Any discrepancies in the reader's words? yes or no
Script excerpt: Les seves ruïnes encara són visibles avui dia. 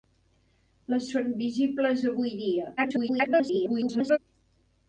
yes